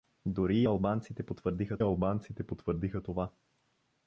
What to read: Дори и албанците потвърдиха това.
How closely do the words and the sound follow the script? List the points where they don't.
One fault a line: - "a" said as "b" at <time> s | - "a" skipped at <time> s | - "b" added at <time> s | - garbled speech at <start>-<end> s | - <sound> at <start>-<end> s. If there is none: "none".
- "албанците потвърдиха" added at 1.8 s